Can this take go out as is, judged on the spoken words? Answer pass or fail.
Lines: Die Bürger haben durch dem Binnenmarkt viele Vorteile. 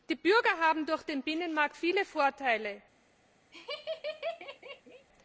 fail